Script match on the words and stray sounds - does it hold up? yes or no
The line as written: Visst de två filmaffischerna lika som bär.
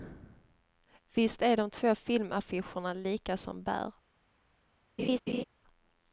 no